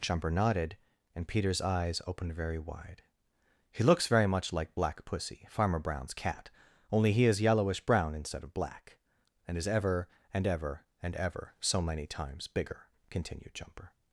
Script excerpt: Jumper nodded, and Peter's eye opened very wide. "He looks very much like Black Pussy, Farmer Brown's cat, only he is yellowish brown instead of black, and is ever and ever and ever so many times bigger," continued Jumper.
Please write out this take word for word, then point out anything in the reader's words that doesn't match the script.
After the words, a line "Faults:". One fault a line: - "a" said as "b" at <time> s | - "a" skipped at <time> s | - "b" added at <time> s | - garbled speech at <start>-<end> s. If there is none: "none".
Jumper nodded, and Peter's eyes opened very wide. "He looks very much like Black Pussy, Farmer Brown's cat, only he is yellowish brown instead of black, and is ever and ever and ever so many times bigger," continued Jumper.
Faults:
- "eye" said as "eyes" at 1.6 s